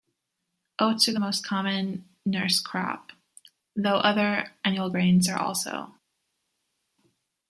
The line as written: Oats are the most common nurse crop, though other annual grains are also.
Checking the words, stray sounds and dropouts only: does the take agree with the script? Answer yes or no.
yes